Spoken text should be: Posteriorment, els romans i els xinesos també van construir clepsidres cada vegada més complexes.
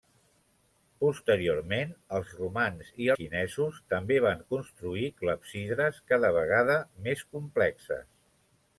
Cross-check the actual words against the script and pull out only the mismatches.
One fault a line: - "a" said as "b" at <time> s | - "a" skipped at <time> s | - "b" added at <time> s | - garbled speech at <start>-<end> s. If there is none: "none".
- "els" skipped at 3.1 s